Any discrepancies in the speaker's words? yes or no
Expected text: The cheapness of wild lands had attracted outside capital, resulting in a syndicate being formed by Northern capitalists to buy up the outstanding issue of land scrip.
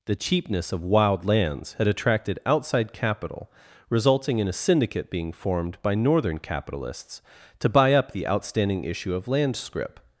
no